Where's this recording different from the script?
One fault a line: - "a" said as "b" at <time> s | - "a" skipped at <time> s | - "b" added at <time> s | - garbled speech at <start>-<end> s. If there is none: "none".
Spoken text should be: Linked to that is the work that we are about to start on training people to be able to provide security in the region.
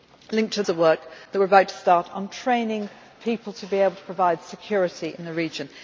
- "that is" skipped at 0.6 s